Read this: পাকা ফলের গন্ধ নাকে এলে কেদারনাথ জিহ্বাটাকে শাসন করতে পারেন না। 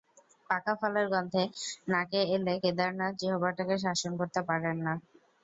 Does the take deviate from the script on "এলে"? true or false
false